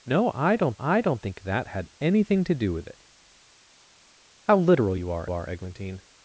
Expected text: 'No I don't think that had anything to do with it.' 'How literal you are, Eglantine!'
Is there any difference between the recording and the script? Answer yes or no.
yes